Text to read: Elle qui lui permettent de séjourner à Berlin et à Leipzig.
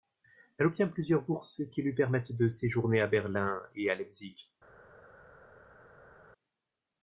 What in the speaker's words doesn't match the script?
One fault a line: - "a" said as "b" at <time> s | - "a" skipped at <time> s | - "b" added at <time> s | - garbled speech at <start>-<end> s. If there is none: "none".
- "obtient plusieurs bourses" added at 0.7 s